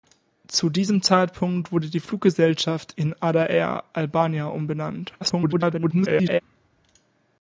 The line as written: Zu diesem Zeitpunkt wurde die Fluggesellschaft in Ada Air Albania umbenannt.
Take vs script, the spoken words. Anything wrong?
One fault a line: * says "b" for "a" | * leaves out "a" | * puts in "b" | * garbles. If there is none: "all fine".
* garbles